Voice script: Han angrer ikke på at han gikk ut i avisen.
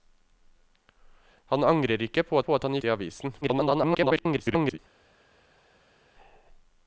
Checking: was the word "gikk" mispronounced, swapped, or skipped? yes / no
yes